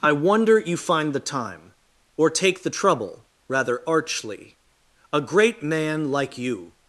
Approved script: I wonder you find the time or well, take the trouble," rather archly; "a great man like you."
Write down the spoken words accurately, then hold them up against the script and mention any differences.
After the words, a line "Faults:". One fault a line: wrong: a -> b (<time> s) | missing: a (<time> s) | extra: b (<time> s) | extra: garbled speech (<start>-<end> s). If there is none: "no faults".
I wonder you find the time or take the trouble," rather archly; "a great man like you."
Faults:
missing: well (2.3 s)